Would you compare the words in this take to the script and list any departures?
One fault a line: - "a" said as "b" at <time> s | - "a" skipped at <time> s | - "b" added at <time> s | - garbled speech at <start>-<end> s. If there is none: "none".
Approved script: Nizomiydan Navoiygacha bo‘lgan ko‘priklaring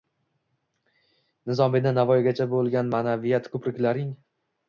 - "ma'naviyat" added at 3.0 s